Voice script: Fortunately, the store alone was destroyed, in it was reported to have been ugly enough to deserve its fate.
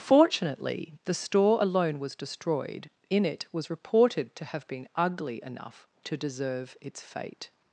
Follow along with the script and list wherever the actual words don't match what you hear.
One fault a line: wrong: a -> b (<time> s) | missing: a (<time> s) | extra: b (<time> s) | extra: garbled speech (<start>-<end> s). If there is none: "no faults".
no faults